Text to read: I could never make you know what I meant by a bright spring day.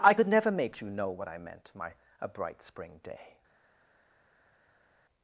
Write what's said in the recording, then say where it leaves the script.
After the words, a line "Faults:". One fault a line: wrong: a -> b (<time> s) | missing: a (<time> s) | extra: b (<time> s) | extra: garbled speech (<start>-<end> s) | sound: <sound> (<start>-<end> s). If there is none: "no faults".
I could never make you know what I meant my a bright spring day.
Faults:
wrong: by -> my (1.7 s)